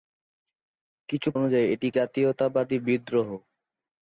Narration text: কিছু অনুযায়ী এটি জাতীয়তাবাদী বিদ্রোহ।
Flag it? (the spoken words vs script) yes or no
no